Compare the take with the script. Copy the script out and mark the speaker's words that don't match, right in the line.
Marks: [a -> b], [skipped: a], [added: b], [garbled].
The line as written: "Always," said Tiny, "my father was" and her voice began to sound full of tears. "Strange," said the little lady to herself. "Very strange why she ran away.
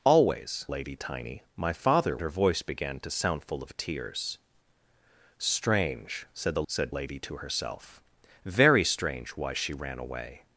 "Always," [said -> lady] Tiny, "my father [skipped: was" and] her voice began to sound full of tears. "Strange," said the [little -> said] lady to herself. "Very strange why she ran away.